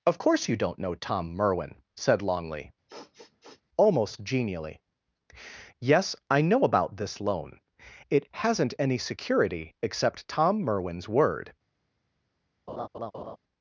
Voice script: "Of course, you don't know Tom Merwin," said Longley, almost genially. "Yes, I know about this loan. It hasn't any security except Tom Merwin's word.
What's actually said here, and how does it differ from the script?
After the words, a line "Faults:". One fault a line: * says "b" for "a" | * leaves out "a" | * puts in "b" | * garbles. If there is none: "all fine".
"Of course, you don't know Tom Merwin," said Longley, almost genially. "Yes, I know about this loan. It hasn't any security except Tom Merwin's word.
Faults:
all fine